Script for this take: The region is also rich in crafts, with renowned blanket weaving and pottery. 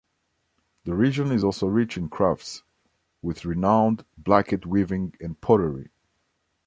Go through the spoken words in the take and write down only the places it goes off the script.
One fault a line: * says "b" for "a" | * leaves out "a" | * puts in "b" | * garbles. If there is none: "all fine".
all fine